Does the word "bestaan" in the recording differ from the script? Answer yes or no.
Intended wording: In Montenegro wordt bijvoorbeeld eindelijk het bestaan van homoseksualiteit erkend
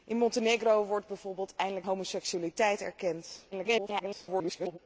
yes